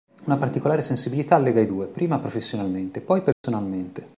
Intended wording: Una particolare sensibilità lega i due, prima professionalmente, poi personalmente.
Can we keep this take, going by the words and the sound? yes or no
no